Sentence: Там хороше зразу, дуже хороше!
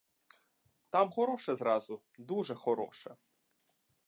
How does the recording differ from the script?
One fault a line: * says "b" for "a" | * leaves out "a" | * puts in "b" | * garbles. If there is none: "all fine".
all fine